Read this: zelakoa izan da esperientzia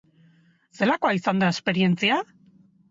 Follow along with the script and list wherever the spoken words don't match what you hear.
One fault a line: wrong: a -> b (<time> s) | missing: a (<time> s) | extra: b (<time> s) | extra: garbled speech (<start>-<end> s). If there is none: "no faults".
no faults